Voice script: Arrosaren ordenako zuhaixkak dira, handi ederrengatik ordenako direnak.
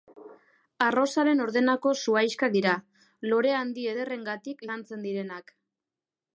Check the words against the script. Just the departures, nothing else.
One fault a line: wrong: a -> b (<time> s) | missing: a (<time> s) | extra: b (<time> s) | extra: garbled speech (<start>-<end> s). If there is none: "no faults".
extra: lore (3.3 s)
wrong: ordenako -> lantzen (4.7 s)